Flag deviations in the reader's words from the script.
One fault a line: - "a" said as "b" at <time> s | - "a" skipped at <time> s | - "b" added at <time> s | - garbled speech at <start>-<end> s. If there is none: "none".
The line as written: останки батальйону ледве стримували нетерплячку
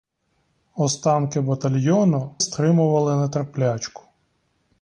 - "ледве" skipped at 2.4 s